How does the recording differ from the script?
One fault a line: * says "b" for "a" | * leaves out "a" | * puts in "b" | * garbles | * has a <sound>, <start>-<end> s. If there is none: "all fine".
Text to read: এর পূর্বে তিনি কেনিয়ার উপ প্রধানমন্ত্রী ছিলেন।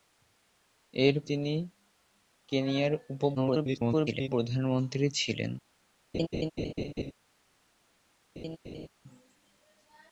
* leaves out "পূর্বে"
* garbles
* has a laugh, 6.1-7.1 s
* has a laugh, 8.4-8.9 s